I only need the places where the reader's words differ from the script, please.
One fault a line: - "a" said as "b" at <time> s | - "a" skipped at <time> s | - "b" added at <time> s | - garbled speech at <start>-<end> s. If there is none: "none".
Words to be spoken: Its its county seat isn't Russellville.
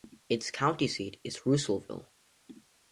- "its" skipped at 0.5 s
- "isn't" said as "is" at 1.2 s